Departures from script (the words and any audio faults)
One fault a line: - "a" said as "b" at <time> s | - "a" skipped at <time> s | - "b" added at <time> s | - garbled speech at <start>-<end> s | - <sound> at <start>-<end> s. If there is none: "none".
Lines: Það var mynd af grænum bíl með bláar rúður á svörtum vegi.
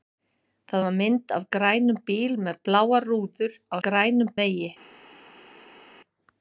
- "svörtum" said as "grænum" at 3.9 s